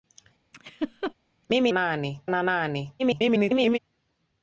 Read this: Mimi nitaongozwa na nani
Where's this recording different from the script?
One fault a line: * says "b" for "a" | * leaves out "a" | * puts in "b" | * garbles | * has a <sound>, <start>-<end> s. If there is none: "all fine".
* has a laugh, 0.5-1.1 s
* says "nani" for "nitaongozwa"
* garbles